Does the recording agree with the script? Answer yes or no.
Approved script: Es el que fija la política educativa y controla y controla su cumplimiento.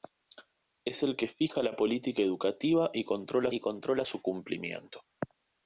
yes